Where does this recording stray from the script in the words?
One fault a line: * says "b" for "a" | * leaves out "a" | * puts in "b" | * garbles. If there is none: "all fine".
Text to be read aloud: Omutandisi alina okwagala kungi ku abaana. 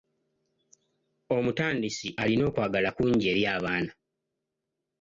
* says "eri" for "ku"